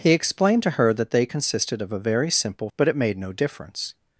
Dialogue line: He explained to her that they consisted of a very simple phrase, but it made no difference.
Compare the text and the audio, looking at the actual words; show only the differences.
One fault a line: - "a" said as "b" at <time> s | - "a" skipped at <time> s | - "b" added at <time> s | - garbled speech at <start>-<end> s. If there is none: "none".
- "phrase" skipped at 2.7 s